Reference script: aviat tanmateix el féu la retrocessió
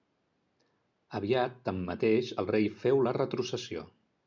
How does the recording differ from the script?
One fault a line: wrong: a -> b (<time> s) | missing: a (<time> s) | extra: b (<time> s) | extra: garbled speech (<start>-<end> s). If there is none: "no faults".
extra: rei (2.5 s)